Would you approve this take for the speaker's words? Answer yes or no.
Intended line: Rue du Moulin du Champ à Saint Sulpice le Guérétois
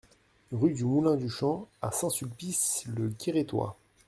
yes